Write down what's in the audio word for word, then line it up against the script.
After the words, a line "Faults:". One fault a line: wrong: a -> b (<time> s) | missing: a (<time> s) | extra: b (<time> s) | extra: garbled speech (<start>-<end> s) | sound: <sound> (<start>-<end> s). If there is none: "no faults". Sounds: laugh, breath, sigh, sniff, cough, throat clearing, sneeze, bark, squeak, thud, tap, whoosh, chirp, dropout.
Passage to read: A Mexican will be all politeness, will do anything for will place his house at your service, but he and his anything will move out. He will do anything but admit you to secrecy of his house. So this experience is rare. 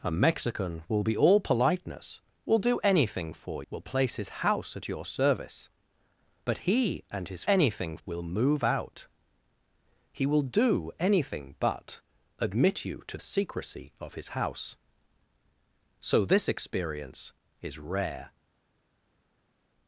A Mexican will be all politeness, will do anything for will place his house at your service, but he and his anything will move out. He will do anything but admit you to secrecy of his house. So this experience is rare.
Faults:
no faults